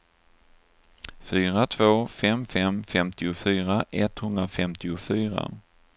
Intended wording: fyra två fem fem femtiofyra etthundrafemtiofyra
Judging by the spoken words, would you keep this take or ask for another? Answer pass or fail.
pass